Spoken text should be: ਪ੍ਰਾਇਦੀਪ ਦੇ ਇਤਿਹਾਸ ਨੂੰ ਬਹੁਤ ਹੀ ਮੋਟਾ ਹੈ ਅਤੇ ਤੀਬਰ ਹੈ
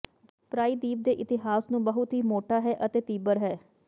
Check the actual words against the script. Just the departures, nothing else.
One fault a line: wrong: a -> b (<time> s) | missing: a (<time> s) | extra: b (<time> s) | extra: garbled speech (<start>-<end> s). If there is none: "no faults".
no faults